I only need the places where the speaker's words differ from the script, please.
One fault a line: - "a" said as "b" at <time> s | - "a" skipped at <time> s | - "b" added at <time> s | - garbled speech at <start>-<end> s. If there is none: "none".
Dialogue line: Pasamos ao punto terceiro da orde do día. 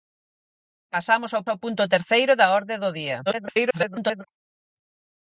- "ao" added at 1.5 s
- garbled speech at 3.3-4.2 s